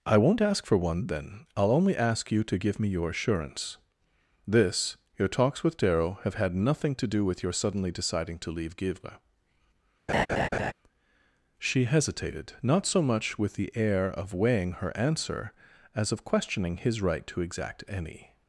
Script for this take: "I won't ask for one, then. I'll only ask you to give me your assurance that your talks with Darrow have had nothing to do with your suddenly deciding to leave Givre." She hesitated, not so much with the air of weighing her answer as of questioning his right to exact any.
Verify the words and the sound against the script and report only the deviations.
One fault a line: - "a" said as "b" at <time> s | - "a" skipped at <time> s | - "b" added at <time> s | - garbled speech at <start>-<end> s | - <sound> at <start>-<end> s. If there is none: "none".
- "that" said as "this" at 4.5 s
- laugh at 10.1-10.7 s